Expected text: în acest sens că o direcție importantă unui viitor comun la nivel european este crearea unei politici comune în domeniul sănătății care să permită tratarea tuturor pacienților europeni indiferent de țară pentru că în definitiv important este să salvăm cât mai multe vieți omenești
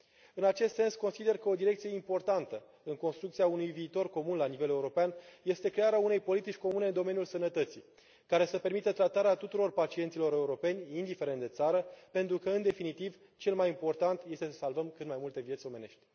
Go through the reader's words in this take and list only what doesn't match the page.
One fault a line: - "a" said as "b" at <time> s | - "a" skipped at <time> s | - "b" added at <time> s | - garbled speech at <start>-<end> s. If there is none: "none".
- "consider" added at 0.9 s
- "în construcția" added at 2.8 s
- "cel mai" added at 13.4 s